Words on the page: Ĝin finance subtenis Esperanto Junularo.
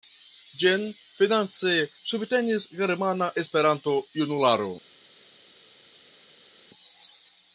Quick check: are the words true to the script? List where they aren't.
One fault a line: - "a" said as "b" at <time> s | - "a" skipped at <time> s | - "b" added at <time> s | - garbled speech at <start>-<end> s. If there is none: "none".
- "Germana" added at 2.8 s